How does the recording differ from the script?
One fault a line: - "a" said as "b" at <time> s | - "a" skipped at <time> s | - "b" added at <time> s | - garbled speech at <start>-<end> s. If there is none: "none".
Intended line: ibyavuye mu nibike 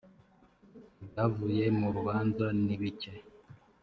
- "rubanza" added at 1.9 s